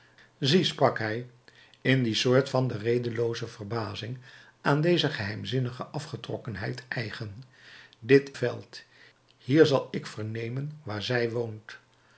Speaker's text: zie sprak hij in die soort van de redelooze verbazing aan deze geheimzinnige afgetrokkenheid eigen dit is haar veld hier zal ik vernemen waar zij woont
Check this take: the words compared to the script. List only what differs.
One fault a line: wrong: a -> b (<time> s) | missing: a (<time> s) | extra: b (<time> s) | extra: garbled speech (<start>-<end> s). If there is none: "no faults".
missing: is haar (8.3 s)